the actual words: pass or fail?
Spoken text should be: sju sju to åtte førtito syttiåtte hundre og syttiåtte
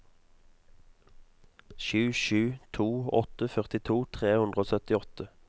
fail